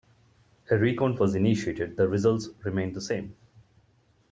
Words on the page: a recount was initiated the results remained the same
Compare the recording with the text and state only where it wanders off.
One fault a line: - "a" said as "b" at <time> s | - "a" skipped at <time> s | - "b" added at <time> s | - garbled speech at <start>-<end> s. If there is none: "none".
none